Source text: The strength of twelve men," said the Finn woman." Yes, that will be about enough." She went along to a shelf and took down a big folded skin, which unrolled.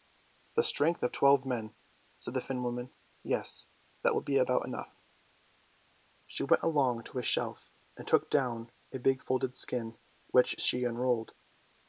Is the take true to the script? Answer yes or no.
no